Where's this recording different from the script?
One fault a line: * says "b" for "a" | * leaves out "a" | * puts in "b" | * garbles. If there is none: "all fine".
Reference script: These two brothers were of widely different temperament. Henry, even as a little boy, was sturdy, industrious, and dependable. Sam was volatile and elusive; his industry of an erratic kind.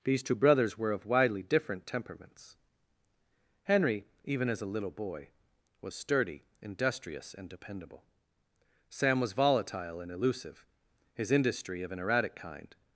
* says "temperaments" for "temperament"